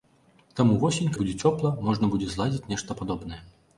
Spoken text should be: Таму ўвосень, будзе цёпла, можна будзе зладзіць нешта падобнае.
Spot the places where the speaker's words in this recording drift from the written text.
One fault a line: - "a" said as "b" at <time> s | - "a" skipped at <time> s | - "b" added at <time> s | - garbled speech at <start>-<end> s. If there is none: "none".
none